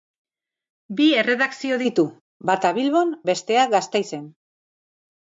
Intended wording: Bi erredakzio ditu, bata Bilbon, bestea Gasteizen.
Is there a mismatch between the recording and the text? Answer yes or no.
no